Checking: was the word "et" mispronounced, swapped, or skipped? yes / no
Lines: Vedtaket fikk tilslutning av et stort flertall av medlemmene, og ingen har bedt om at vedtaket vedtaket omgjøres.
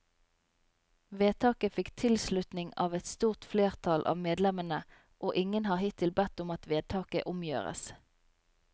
no